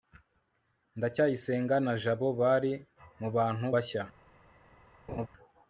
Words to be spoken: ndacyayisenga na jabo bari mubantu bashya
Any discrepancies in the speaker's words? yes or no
no